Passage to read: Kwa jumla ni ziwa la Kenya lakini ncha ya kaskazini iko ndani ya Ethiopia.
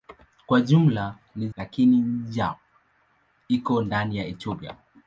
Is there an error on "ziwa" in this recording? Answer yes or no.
yes